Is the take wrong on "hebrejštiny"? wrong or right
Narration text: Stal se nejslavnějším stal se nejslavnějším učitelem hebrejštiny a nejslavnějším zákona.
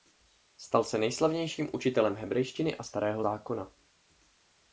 right